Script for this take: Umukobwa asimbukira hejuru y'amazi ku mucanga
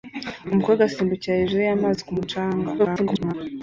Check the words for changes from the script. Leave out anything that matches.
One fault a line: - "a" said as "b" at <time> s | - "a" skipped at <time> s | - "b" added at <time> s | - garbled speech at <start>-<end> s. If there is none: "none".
- garbled speech at 2.8-3.3 s